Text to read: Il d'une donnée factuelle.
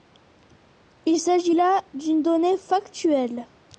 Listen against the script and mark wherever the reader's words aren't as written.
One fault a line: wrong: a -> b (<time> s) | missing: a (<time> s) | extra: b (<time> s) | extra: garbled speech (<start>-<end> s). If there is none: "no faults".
extra: s'agit là (1.2 s)